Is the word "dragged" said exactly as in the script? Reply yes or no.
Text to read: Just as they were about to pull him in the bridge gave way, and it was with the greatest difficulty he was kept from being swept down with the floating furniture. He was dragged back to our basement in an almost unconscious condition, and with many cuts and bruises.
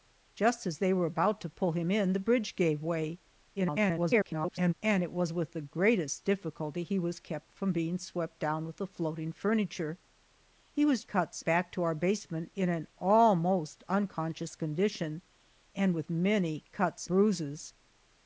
no